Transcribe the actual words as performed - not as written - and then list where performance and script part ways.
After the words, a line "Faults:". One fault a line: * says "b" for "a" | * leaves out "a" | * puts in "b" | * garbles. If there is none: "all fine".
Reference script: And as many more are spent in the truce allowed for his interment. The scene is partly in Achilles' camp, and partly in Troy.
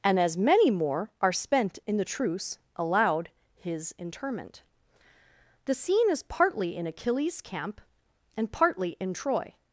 And as many more are spent in the truce allowed his interment. The scene is partly in Achilles' camp, and partly in Troy.
Faults:
* leaves out "for"